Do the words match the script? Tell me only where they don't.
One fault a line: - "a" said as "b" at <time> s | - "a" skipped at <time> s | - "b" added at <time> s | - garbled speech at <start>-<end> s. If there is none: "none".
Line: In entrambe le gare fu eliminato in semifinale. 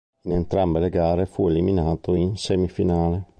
none